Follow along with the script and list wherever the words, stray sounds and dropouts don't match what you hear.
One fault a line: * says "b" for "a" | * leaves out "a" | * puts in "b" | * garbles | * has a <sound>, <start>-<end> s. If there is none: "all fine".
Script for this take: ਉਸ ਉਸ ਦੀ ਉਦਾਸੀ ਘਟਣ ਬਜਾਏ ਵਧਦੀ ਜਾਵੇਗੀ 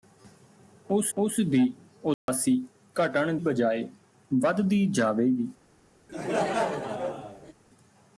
* has a dropout, 2.1-2.3 s
* has a laugh, 6.1-7.5 s